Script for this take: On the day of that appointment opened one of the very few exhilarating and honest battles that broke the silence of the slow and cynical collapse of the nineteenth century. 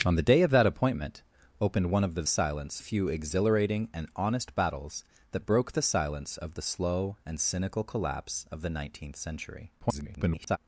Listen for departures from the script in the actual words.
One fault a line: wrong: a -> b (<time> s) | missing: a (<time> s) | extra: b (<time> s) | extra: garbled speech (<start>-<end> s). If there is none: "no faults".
wrong: very -> silence (2.3 s)
extra: garbled speech (9.8-10.6 s)